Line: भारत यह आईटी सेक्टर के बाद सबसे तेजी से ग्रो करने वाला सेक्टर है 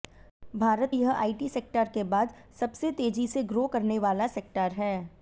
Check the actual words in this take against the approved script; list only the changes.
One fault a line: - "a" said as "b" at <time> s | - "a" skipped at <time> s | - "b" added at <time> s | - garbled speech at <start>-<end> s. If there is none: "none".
none